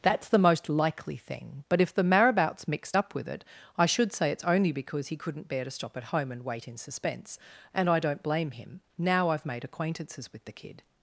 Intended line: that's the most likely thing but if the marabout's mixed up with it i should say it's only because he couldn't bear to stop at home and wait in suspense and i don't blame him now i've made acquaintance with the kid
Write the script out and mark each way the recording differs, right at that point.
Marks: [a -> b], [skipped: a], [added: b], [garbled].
that's the most likely thing but if the marabout's mixed up with it i should say it's only because he couldn't bear to stop at home and wait in suspense and i don't blame him now i've made [acquaintance -> acquaintances] with the kid